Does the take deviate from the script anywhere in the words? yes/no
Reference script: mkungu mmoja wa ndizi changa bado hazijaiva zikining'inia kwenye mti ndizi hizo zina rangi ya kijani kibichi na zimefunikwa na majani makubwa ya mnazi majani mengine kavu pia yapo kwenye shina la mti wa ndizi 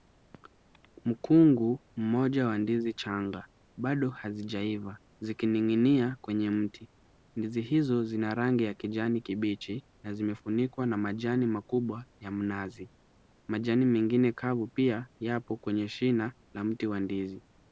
no